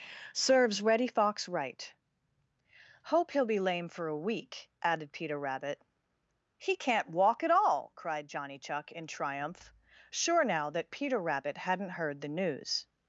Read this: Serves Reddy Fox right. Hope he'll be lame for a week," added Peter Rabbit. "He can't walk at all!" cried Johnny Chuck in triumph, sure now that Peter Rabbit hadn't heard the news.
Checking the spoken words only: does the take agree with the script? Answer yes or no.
yes